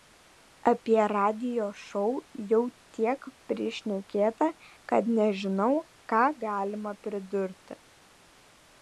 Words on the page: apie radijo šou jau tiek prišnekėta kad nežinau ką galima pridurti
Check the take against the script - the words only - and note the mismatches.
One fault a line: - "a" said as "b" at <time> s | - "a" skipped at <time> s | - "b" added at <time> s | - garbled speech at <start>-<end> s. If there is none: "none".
none